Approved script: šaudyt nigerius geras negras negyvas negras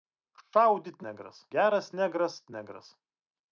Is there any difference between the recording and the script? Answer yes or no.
yes